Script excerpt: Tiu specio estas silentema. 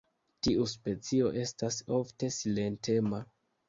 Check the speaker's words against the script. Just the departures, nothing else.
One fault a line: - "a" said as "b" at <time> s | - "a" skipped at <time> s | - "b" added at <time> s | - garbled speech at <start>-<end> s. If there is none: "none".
- "ofte" added at 2.0 s